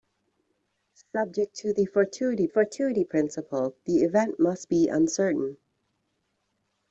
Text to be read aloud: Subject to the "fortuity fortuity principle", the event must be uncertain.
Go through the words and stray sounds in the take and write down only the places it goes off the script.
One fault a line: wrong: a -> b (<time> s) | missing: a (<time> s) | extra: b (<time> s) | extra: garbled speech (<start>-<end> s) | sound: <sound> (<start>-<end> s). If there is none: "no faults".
no faults